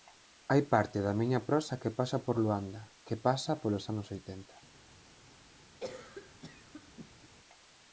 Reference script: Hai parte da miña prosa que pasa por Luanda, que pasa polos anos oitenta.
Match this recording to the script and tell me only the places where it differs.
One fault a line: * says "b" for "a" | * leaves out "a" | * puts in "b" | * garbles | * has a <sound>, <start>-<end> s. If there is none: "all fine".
* has a cough, 5.8-7.3 s